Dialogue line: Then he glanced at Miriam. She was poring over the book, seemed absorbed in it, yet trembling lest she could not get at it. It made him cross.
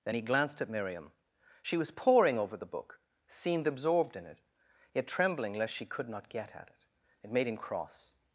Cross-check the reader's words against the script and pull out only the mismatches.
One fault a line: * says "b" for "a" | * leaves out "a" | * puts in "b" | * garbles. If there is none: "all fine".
all fine